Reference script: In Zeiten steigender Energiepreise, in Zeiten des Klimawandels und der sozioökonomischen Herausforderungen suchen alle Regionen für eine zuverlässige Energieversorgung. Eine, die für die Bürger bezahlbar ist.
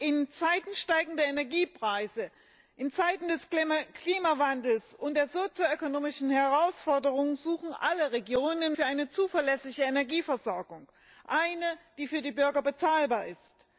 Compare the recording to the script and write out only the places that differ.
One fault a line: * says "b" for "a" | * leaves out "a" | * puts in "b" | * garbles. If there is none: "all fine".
all fine